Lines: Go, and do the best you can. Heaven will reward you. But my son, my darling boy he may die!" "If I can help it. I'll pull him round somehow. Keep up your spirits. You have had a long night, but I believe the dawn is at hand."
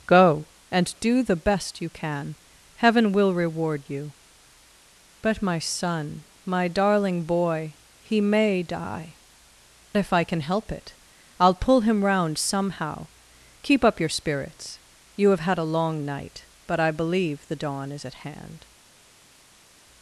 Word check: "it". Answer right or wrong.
right